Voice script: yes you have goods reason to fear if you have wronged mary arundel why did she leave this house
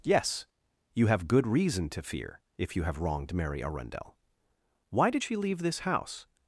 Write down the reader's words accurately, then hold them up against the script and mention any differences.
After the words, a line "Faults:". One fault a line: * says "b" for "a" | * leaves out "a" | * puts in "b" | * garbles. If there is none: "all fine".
yes you have good reason to fear if you have wronged mary arundel why did she leave this house
Faults:
* says "good" for "goods"